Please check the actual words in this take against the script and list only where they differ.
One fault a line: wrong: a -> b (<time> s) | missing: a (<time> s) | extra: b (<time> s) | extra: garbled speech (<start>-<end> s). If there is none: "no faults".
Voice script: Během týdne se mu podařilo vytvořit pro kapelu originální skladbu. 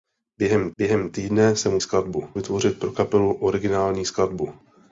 extra: během (0.8 s)
wrong: podařilo -> skladbu (1.8 s)